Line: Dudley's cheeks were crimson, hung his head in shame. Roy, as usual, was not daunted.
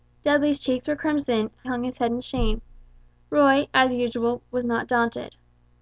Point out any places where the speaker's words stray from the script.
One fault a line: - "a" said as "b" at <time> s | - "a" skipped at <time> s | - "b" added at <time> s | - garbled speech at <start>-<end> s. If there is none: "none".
none